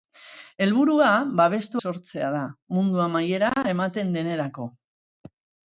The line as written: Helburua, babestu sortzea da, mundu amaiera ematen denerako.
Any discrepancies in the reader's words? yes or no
no